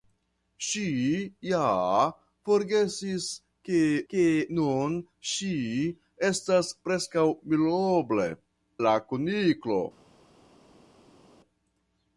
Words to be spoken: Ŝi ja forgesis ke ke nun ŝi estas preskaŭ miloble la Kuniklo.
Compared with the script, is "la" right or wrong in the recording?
right